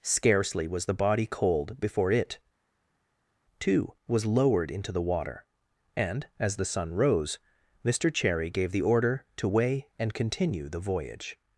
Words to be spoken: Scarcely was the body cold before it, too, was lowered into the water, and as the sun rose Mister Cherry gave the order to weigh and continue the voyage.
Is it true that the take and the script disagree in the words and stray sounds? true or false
false